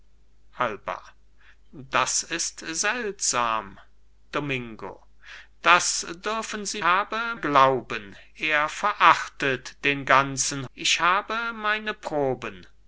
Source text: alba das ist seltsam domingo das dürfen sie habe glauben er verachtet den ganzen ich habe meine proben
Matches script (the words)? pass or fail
pass